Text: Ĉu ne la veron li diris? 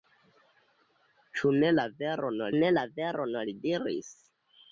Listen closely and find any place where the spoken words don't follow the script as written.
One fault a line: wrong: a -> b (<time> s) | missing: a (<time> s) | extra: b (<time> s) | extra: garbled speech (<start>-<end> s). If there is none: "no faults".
extra: ne la veron (2.6 s)